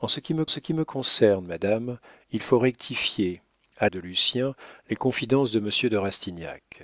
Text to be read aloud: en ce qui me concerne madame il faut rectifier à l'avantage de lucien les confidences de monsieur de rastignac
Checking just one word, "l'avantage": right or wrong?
wrong